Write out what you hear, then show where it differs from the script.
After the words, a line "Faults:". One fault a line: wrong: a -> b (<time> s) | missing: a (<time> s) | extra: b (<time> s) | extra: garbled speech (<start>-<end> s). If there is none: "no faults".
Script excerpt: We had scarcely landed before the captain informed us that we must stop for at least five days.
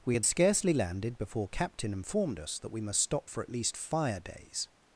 We had scarcely landed before captain informed us that we must stop for at least fire days.
Faults:
missing: the (1.5 s)
wrong: five -> fire (3.8 s)